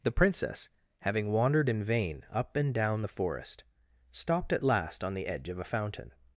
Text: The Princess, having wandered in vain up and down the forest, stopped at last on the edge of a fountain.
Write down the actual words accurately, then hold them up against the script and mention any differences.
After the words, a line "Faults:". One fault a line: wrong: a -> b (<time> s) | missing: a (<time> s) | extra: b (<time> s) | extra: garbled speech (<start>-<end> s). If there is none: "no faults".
The Princess, having wandered in vain up and down the forest, stopped at last on the edge of a fountain.
Faults:
no faults